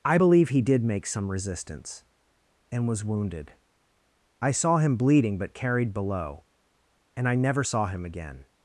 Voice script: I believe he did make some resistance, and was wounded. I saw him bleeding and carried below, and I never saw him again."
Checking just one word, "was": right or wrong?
right